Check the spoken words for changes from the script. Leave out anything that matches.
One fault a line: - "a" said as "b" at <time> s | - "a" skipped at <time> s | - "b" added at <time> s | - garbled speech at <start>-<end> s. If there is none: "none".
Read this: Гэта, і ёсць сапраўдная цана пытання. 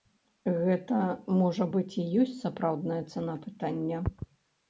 - "можа быць" added at 1.4 s